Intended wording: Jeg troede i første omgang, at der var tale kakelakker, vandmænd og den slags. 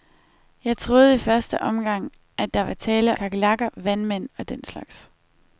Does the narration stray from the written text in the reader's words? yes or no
no